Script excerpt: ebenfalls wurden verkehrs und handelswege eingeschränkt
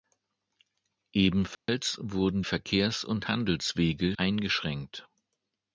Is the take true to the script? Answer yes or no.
yes